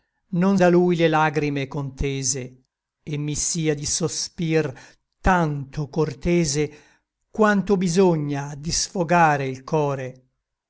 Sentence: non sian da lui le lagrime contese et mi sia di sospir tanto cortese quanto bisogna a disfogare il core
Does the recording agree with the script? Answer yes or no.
no